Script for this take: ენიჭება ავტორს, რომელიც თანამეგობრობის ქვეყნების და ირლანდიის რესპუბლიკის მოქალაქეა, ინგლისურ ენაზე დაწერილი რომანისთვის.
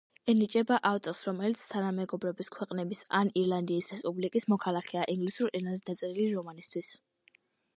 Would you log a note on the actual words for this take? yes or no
yes